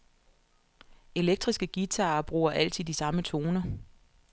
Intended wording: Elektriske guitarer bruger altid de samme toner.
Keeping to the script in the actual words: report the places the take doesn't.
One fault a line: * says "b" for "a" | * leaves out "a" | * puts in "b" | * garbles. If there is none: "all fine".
all fine